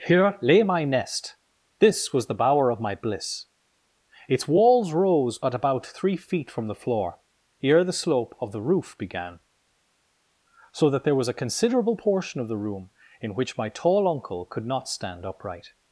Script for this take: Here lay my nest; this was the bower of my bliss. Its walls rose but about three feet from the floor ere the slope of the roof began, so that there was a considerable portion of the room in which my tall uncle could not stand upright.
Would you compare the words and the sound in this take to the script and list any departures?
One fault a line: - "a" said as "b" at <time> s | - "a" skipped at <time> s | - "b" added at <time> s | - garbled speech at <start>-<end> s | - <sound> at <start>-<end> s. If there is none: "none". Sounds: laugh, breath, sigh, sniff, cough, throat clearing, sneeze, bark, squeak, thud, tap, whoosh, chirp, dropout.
- "but" said as "at" at 5.4 s